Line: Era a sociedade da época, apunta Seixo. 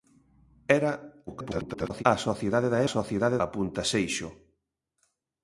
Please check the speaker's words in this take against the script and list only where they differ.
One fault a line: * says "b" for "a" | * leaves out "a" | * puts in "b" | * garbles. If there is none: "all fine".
* garbles
* says "sociedade" for "época"